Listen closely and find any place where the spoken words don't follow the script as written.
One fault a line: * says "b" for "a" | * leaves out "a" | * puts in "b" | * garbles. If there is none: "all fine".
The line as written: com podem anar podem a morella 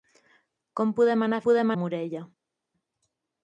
all fine